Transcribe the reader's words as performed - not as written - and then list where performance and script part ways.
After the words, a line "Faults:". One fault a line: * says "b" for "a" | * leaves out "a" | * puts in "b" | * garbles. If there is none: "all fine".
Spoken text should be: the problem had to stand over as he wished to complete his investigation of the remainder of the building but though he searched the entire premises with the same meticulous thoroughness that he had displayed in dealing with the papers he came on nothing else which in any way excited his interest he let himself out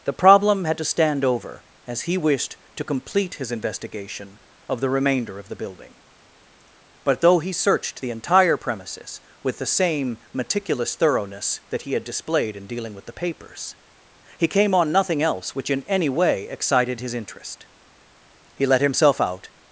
the problem had to stand over as he wished to complete his investigation of the remainder of the building but though he searched the entire premises with the same meticulous thoroughness that he had displayed in dealing with the papers he came on nothing else which in any way excited his interest he let himself out
Faults:
all fine